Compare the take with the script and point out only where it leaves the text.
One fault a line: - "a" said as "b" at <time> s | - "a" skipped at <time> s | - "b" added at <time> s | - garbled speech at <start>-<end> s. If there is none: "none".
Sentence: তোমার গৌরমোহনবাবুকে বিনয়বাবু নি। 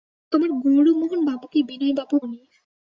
none